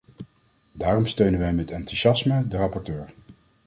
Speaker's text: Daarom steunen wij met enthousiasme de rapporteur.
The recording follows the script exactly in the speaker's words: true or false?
true